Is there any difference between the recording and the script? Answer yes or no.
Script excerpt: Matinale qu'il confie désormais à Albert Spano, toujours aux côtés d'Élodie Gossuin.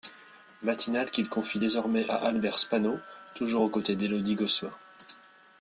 no